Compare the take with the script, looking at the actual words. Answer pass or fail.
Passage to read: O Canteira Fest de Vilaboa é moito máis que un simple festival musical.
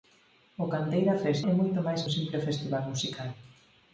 fail